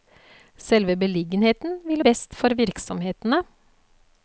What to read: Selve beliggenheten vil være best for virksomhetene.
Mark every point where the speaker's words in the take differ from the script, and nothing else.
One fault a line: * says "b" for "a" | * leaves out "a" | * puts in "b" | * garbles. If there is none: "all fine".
* leaves out "være"